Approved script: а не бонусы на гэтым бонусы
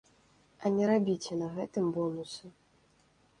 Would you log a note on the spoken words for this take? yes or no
yes